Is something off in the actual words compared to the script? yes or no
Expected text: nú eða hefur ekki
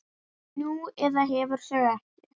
yes